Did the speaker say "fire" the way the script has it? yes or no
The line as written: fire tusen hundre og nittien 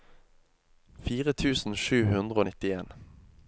yes